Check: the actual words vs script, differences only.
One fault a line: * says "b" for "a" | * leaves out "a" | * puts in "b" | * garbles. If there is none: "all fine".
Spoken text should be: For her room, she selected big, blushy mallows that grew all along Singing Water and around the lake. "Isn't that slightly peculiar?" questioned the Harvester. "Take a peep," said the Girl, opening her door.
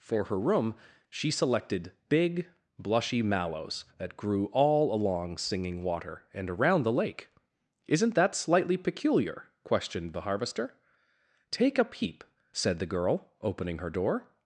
all fine